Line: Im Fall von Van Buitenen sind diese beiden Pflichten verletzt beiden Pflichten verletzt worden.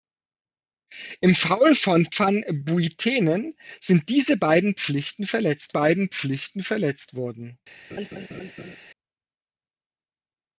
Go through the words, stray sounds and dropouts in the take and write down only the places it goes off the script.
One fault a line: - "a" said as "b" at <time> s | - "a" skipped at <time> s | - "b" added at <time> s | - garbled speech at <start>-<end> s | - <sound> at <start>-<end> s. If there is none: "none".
- laugh at 7.9-8.8 s